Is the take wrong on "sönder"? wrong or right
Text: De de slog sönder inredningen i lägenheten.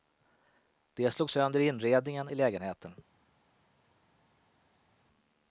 right